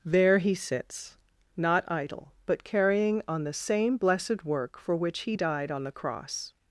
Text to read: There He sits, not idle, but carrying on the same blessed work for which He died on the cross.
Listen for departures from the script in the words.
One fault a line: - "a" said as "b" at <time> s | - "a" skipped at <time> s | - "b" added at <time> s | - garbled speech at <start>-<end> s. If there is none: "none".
none